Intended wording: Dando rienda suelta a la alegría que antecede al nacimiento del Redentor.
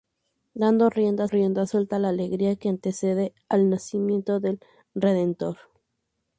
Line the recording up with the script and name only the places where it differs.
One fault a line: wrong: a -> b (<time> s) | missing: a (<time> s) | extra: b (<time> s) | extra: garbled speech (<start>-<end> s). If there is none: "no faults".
extra: rienda (1.2 s)